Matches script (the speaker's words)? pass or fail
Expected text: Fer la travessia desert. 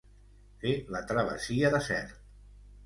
pass